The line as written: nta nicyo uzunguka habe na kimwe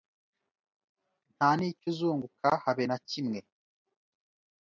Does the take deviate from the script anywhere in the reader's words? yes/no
no